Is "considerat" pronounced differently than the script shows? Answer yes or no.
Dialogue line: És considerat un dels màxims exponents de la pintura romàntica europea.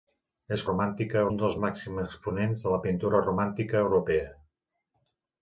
yes